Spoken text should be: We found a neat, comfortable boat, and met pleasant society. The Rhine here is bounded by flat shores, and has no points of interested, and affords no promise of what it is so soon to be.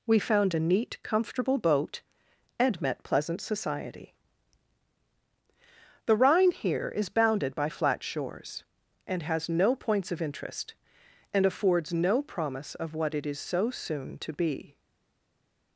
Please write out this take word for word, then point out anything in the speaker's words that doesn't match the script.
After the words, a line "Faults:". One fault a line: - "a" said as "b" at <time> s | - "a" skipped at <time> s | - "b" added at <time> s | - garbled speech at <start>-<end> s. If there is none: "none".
We found a neat, comfortable boat, and met pleasant society. The Rhine here is bounded by flat shores, and has no points of interest, and affords no promise of what it is so soon to be.
Faults:
- "interested" said as "interest" at 10.2 s